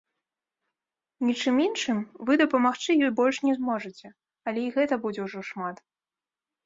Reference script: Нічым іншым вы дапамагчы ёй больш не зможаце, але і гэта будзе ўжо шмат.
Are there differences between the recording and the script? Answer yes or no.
no